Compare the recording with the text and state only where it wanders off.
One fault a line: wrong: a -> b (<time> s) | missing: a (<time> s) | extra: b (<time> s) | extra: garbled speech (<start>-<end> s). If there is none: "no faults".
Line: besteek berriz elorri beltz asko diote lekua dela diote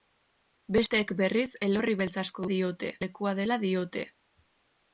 no faults